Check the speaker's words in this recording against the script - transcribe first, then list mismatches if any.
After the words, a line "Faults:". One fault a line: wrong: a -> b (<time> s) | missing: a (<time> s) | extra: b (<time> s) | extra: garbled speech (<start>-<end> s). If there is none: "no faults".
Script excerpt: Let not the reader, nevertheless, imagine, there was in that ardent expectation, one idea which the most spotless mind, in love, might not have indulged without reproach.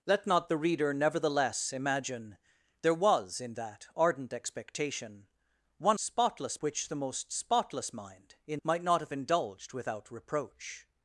Let not the reader, nevertheless, imagine, there was in that ardent expectation, one spotless which the most spotless mind, in might not have indulged without reproach.
Faults:
wrong: idea -> spotless (6.0 s)
missing: love (8.6 s)